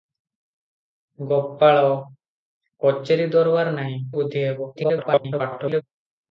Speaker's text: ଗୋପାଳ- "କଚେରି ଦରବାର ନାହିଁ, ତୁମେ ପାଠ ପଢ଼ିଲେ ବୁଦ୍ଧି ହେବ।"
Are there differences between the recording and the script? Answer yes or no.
yes